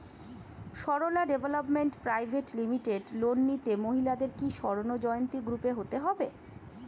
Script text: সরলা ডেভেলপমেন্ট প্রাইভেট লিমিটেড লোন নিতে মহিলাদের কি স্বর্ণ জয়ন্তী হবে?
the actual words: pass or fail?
fail